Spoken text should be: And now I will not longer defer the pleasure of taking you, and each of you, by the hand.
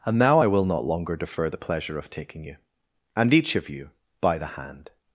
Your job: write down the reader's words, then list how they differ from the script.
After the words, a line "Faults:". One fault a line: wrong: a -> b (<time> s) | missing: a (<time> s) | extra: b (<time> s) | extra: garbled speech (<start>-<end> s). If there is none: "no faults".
And now I will not longer defer the pleasure of taking you, and each of you, by the hand.
Faults:
no faults